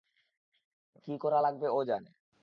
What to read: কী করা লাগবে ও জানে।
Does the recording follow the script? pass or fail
pass